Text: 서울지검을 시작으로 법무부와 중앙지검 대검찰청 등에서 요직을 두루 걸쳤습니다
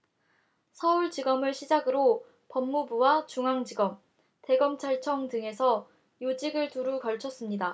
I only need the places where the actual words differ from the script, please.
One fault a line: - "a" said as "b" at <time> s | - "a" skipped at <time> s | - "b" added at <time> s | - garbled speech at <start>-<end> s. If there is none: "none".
none